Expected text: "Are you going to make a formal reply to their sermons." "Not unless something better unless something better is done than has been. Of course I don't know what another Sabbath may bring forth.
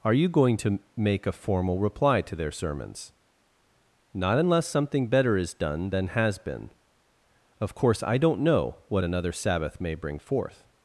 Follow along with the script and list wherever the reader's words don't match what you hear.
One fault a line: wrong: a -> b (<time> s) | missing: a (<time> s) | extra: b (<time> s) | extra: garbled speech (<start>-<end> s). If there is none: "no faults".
missing: unless something better (5.4 s)